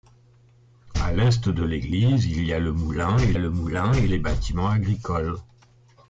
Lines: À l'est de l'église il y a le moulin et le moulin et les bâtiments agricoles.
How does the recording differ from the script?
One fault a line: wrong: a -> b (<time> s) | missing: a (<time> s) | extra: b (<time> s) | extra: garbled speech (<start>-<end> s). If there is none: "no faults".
no faults